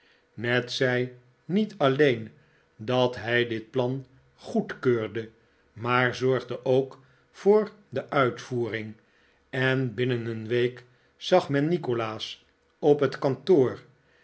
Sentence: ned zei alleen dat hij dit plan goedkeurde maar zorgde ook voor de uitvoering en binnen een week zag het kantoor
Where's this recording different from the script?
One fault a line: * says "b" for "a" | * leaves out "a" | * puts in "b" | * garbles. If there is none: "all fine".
* puts in "niet"
* puts in "men nikolaas op"